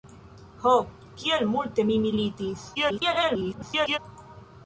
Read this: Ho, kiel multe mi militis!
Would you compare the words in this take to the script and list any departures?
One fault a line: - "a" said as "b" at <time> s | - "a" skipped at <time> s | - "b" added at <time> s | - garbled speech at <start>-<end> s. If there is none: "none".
- garbled speech at 2.7-4.0 s